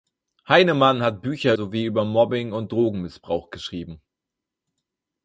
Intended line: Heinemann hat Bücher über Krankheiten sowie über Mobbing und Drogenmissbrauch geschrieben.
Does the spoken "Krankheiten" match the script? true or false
false